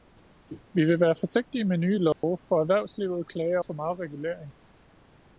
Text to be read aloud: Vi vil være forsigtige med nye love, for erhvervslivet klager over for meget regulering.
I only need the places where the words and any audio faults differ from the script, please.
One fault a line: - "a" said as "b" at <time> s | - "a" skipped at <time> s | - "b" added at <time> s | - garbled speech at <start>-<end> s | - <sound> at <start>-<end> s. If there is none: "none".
- dropout at 2.1-2.2 s
- "over" skipped at 3.6 s